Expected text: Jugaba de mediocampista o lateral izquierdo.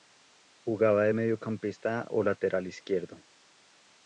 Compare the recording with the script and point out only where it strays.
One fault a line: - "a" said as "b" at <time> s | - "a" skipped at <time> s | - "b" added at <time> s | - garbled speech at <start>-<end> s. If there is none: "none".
none